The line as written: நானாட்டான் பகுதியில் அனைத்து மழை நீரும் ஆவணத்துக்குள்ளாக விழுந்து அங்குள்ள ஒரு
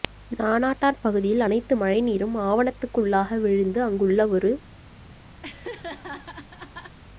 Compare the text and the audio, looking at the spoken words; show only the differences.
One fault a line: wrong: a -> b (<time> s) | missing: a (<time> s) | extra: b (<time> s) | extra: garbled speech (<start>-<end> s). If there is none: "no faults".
no faults